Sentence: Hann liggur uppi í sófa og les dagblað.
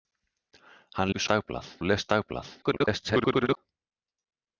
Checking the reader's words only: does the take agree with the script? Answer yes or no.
no